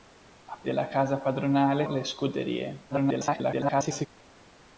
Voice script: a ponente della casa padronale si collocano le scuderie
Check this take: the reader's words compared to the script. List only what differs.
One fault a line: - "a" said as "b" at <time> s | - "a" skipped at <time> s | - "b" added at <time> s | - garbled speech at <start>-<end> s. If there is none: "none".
- "ponente" skipped at 0.6 s
- "si collocano" skipped at 1.9 s
- garbled speech at 2.9-4.1 s